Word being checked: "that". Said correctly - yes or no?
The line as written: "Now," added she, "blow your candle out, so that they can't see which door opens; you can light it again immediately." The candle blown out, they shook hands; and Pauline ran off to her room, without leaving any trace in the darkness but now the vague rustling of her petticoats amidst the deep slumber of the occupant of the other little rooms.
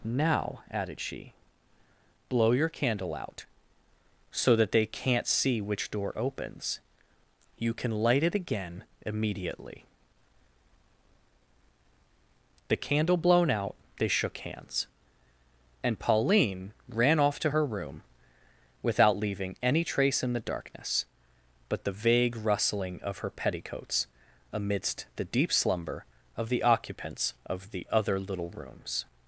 yes